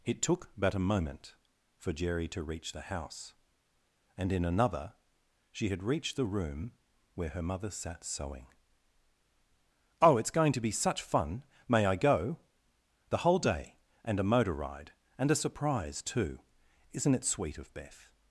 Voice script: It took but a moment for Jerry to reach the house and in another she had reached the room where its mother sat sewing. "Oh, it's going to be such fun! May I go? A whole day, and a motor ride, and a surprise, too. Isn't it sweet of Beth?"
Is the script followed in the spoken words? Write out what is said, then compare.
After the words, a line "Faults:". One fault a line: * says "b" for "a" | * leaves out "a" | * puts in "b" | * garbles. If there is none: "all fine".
It took but a moment for Jerry to reach the house and in another she had reached the room where her mother sat sewing. "Oh, it's going to be such fun! May I go? The whole day, and a motor ride, and a surprise, too. Isn't it sweet of Beth?"
Faults:
* says "her" for "its"
* says "The" for "A"